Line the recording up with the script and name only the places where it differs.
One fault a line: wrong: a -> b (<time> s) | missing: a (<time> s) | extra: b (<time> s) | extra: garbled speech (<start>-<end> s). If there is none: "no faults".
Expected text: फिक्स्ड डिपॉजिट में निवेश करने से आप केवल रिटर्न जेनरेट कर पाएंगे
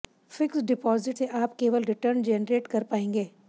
missing: में निवेश करने (1.2 s)